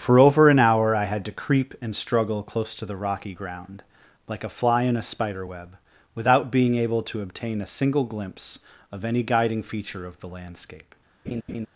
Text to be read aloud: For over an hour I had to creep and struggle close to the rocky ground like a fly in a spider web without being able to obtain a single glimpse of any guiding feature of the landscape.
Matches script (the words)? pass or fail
pass